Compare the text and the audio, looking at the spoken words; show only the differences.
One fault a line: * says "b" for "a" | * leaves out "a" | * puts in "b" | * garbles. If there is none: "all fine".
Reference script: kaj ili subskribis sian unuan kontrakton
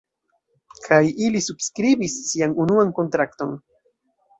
all fine